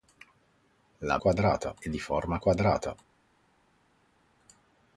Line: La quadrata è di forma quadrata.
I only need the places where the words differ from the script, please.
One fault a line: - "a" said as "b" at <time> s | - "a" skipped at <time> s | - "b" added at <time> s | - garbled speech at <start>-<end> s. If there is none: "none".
none